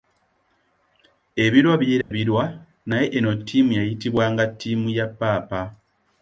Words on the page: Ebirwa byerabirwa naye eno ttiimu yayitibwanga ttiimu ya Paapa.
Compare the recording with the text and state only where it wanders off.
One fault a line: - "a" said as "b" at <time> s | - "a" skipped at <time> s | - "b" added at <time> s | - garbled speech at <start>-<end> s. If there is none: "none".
none